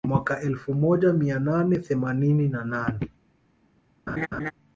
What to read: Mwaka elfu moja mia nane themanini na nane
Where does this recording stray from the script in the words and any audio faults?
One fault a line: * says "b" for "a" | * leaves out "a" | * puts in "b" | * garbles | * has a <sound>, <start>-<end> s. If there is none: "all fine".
* has a laugh, 4.1-4.5 s